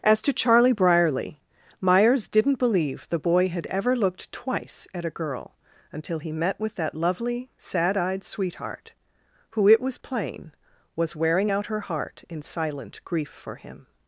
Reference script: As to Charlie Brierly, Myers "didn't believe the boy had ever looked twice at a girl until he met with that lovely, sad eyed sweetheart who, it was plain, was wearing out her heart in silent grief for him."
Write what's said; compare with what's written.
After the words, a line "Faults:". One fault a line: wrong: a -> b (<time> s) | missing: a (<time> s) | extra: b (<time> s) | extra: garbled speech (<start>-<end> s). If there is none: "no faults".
As to Charlie Brierly, Myers "didn't believe the boy had ever looked twice at a girl until he met with that lovely, sad eyed sweetheart who, it was plain, was wearing out her heart in silent grief for him."
Faults:
no faults